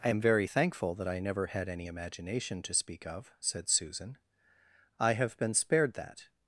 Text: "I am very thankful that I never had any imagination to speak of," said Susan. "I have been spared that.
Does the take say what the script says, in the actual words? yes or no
yes